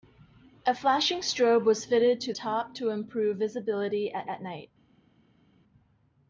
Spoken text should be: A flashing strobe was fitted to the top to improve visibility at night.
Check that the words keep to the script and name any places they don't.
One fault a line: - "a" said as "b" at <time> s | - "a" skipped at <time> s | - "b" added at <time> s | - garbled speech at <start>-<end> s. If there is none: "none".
- "the" skipped at 2.3 s
- "at" added at 4.2 s